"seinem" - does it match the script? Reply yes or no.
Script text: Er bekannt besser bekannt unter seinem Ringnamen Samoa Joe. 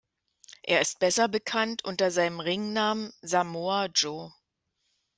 yes